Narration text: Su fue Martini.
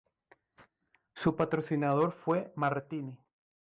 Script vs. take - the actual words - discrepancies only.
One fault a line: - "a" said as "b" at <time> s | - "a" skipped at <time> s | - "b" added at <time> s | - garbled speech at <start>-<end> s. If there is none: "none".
- "patrocinador" added at 1.4 s